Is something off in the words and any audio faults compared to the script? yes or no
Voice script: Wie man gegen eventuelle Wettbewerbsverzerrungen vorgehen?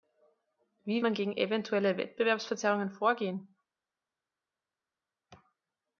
no